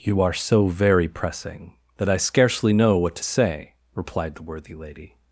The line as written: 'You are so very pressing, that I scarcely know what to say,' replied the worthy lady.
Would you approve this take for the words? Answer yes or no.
yes